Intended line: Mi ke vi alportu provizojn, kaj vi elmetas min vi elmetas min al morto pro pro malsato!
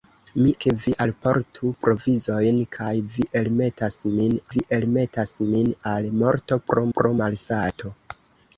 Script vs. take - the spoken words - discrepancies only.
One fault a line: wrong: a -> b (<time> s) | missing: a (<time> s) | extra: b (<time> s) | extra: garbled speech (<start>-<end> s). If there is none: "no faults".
no faults